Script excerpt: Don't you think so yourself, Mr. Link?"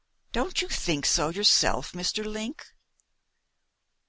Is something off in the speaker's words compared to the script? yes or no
no